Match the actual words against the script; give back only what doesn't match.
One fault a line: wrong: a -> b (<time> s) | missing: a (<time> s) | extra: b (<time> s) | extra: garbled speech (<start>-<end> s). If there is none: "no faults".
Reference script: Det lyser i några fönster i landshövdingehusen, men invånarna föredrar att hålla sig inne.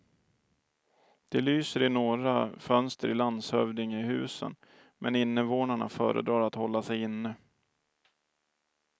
no faults